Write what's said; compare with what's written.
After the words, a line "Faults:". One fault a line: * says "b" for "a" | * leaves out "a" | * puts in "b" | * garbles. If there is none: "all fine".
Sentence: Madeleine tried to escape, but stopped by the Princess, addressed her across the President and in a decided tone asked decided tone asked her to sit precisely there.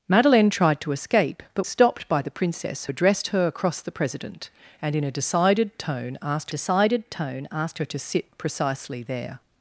Madeleine tried to escape, but stopped by the Princess, addressed her across the President and in a decided tone asked decided tone asked her to sit precisely there.
Faults:
all fine